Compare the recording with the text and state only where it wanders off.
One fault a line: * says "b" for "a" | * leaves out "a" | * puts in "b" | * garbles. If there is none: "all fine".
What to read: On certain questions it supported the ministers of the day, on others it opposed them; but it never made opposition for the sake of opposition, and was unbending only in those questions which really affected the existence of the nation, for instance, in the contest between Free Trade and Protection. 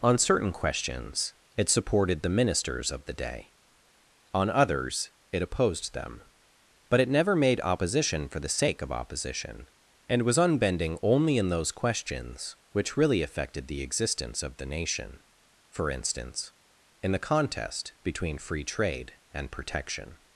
all fine